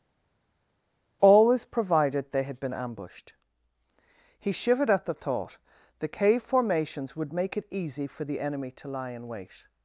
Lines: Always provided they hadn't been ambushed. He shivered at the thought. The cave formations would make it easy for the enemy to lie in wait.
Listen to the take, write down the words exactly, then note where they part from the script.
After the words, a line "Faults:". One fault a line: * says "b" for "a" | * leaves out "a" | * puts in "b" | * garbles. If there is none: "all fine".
Always provided they had been ambushed. He shivered at the thought. The cave formations would make it easy for the enemy to lie in wait.
Faults:
* says "had" for "hadn't"